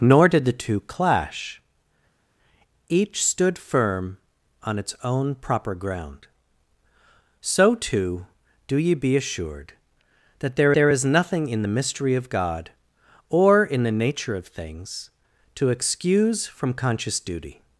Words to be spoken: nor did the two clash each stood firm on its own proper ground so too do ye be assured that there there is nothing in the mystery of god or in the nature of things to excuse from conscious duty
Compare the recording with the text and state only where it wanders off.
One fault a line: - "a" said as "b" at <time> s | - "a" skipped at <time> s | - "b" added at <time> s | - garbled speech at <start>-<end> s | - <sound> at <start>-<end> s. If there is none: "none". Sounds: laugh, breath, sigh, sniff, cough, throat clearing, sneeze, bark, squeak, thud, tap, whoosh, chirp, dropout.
none